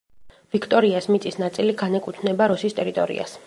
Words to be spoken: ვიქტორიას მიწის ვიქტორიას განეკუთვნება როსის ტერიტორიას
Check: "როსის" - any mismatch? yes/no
no